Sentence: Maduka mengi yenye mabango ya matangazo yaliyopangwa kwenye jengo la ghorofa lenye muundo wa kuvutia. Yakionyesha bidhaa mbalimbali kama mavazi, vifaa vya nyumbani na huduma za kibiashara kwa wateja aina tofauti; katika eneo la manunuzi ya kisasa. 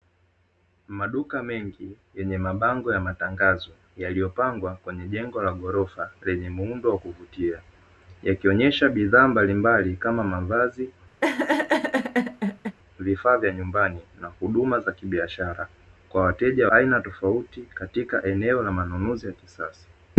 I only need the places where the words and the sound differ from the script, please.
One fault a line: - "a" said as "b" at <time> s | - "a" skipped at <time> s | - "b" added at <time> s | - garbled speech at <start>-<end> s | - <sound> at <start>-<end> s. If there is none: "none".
- laugh at 11.2-12.8 s